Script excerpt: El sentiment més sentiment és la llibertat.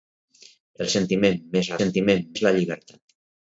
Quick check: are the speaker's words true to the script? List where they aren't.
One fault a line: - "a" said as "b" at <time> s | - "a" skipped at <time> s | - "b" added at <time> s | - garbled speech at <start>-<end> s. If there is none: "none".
none